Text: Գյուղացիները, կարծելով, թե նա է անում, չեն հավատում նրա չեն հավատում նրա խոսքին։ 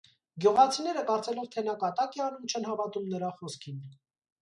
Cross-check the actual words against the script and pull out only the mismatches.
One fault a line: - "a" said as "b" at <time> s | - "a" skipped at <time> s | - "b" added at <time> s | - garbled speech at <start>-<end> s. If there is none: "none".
- "կատակ" added at 1.8 s
- "չեն հավատում նրա" skipped at 3.3 s